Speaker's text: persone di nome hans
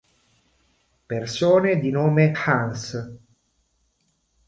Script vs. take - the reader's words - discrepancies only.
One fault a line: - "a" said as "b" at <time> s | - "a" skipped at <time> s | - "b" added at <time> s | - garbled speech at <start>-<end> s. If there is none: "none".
none